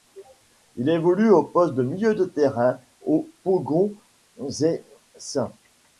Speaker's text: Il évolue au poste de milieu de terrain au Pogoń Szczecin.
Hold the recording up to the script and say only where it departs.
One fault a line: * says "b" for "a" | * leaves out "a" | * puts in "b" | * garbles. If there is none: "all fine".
all fine